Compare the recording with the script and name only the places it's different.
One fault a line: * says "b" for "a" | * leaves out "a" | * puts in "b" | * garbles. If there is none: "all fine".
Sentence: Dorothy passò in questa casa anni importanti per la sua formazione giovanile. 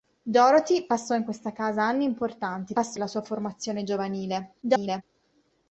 * says "passò" for "per"
* garbles